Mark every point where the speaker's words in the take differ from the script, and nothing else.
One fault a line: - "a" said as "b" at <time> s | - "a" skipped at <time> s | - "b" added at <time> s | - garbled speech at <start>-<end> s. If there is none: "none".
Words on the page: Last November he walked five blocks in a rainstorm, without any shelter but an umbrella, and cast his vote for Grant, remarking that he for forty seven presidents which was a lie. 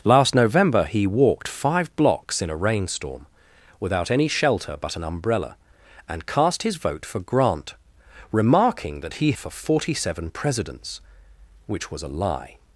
none